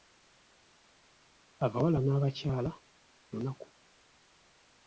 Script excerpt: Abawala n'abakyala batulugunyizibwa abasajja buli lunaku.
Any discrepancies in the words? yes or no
yes